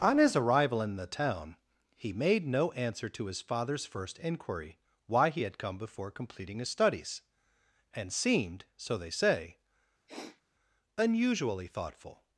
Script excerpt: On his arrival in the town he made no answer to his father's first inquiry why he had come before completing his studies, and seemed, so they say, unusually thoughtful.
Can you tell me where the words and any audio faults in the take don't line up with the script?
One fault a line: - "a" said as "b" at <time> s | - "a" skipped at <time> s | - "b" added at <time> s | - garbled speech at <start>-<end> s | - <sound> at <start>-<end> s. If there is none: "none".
- sniff at 10.1-10.4 s